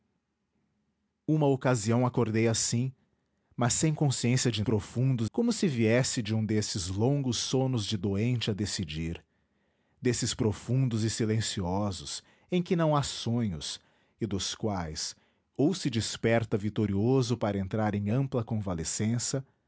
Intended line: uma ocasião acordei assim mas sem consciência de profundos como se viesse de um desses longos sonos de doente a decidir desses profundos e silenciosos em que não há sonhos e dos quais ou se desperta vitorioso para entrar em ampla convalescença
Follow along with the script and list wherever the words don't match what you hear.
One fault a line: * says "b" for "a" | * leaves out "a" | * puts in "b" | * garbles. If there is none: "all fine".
all fine